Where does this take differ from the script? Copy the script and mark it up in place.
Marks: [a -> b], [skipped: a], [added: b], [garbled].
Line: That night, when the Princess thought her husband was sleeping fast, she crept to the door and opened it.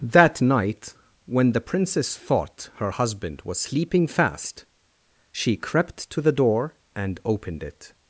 That night, when the Princess thought her husband was sleeping fast, she crept to the door and opened it.